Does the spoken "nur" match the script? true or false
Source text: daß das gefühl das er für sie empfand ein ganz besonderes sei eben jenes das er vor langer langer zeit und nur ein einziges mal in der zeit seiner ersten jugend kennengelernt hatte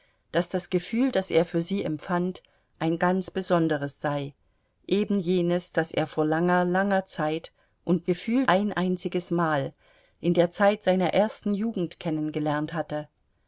false